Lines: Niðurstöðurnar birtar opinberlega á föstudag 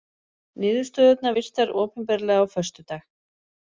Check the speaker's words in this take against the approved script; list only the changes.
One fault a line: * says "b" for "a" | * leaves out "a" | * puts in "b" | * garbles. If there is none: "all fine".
all fine